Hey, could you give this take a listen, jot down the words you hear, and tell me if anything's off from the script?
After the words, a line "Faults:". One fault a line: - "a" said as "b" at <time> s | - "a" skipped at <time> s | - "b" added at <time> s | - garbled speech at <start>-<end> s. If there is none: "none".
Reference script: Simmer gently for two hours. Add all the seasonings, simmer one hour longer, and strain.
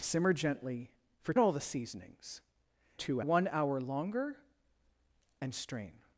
Simmer gently for all the seasonings, two one hour longer, and strain.
Faults:
- "two hours Add" skipped at 1.3 s
- "simmer" said as "two" at 2.9 s